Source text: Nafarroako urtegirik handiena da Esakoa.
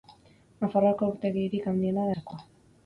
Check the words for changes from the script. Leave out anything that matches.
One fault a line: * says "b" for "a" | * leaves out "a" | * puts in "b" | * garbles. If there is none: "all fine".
* leaves out "da"